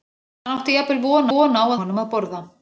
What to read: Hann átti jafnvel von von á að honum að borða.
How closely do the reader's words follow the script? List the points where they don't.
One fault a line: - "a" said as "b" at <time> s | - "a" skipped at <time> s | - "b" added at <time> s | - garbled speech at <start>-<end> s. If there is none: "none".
none